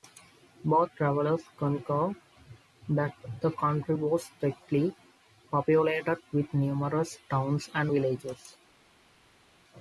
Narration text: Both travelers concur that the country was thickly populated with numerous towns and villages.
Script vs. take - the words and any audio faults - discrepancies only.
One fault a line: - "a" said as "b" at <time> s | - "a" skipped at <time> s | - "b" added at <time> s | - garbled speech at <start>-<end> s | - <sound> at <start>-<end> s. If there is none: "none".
none